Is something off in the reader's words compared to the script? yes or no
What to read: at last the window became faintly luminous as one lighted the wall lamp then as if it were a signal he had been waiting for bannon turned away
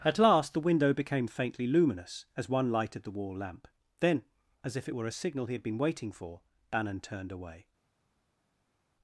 no